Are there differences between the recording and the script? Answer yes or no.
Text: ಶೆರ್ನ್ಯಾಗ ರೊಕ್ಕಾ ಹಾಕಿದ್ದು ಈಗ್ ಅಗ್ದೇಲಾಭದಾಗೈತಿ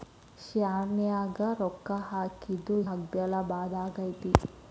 yes